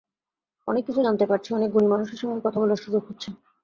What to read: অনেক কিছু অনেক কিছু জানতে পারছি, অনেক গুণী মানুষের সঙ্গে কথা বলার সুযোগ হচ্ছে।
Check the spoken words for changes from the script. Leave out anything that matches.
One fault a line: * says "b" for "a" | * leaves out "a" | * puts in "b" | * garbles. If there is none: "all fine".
* leaves out "অনেক কিছু"